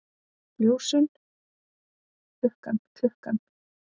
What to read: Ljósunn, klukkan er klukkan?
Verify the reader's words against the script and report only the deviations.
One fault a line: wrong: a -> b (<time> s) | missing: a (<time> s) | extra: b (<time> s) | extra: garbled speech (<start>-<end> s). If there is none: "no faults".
no faults